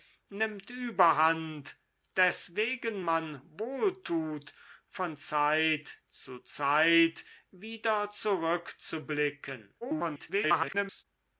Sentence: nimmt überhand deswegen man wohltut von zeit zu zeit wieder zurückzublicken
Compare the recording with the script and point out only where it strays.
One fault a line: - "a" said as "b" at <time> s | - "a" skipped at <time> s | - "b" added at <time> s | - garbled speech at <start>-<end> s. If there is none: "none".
- garbled speech at 9.8-11.1 s